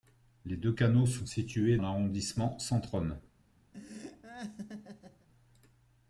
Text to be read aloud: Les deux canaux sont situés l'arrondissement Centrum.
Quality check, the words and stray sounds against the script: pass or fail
fail